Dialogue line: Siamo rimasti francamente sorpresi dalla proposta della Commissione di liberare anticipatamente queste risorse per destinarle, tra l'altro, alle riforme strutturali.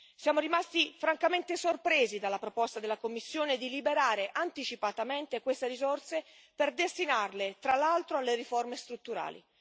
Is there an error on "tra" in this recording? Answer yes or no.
no